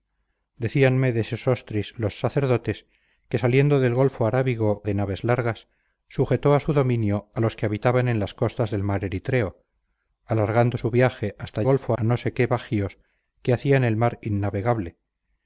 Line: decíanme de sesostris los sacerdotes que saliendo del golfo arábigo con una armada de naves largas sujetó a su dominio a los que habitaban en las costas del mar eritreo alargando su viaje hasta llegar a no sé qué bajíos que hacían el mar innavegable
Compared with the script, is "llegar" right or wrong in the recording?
wrong